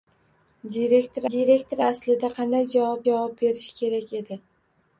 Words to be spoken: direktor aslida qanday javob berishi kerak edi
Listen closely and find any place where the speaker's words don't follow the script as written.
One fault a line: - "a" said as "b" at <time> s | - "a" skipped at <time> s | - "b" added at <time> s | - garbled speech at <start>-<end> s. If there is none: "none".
- "direktor" added at 1.3 s
- "javob" added at 3.1 s